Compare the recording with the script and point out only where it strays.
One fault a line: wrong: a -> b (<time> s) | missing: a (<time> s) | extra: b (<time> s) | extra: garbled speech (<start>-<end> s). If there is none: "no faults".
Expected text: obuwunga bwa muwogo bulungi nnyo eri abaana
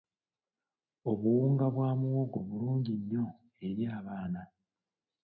no faults